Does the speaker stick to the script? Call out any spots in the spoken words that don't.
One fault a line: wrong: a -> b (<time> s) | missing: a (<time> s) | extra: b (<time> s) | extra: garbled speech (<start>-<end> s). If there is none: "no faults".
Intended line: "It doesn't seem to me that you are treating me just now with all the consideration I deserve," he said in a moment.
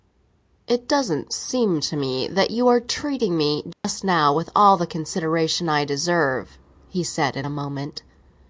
no faults